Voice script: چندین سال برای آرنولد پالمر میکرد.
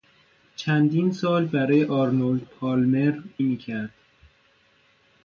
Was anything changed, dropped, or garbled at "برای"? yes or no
no